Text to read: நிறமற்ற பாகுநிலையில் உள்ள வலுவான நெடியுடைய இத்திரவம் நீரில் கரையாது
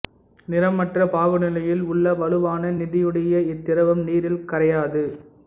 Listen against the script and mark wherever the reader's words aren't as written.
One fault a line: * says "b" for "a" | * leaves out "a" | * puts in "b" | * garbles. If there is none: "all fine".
all fine